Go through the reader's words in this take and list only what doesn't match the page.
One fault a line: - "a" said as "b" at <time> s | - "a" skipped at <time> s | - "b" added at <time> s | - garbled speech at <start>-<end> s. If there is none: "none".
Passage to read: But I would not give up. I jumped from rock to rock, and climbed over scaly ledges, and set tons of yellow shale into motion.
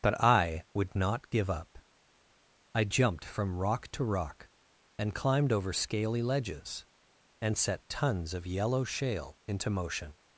none